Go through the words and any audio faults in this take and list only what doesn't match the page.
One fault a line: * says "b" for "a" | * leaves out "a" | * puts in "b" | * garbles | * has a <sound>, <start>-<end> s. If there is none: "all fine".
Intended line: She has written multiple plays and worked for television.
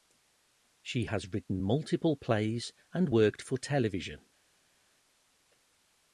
all fine